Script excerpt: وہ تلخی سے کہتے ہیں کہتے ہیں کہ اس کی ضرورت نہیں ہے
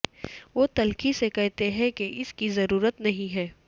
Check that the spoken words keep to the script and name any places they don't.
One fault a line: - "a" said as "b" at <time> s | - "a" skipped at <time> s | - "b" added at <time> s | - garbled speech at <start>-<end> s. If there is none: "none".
- "کہتے ہیں" skipped at 1.9 s